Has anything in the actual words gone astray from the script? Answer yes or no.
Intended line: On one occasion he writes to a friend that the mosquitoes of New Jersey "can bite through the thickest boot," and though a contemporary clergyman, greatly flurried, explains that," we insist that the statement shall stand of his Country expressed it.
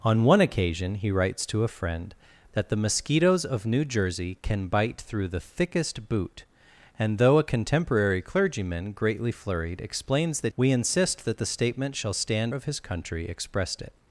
no